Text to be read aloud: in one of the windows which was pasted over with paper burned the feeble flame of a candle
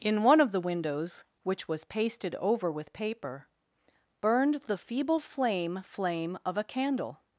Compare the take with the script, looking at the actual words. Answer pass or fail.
fail